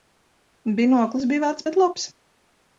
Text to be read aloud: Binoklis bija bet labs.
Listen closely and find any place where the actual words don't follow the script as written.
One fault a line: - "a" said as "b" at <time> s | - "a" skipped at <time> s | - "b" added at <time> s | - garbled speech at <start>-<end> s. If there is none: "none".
- "vecs" added at 1.4 s